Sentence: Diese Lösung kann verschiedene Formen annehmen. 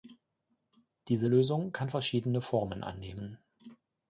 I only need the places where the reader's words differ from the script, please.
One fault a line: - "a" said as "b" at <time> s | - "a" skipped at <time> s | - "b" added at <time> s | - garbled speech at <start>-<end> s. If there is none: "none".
none